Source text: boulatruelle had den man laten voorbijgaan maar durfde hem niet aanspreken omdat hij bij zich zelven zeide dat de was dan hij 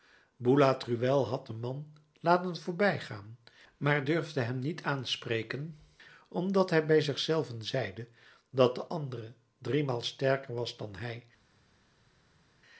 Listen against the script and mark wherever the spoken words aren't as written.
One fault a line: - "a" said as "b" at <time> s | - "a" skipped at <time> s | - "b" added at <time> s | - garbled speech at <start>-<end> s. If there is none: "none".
- "andere driemaal sterker" added at 8.8 s